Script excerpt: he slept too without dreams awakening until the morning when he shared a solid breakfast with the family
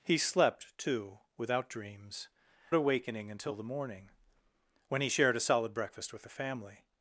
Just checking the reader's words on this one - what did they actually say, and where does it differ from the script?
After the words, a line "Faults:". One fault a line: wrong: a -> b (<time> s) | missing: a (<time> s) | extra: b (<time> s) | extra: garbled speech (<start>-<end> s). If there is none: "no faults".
he slept too without dreams awakening until the morning when he shared a solid breakfast with the family
Faults:
no faults